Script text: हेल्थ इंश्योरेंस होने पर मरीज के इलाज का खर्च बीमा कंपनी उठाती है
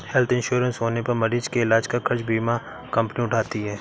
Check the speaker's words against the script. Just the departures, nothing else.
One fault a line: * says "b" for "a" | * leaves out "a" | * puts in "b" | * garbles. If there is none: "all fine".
all fine